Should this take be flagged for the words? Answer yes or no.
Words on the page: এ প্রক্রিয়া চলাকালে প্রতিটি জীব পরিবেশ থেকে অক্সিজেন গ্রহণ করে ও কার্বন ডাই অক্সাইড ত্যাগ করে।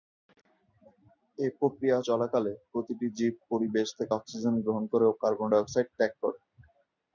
no